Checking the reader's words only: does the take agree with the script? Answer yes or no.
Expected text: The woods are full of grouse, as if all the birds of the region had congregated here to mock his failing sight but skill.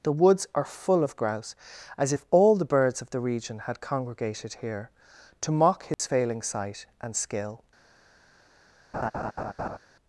no